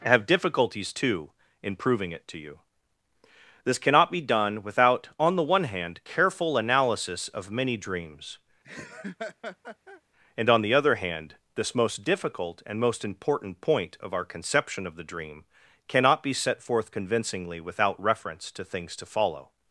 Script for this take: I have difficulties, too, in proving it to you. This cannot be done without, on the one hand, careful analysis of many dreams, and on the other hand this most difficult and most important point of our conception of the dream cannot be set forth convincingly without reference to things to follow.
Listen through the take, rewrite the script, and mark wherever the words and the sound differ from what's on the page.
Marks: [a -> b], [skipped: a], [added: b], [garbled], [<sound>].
[skipped: I] have difficulties, too, in proving it to you. This cannot be done without, on the one hand, careful analysis of many dreams, [laugh] and on the other hand this most difficult and most important point of our conception of the dream cannot be set forth convincingly without reference to things to follow.